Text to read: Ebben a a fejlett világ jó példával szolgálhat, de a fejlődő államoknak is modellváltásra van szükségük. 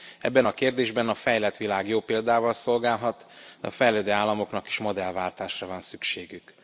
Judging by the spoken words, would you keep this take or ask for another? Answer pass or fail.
fail